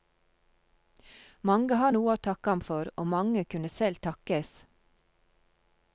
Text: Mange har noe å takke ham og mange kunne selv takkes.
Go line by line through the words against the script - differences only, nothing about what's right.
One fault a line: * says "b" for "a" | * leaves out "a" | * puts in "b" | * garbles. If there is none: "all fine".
* puts in "for"